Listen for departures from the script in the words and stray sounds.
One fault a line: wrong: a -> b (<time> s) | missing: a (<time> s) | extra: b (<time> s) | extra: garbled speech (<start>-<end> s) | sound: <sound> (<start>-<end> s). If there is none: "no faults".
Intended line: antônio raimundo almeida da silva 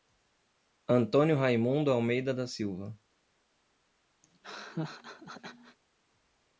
sound: laugh (4.2-5.8 s)